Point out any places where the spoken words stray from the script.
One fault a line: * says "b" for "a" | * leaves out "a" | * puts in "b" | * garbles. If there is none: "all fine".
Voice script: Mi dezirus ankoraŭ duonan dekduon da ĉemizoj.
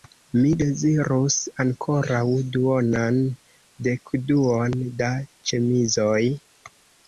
all fine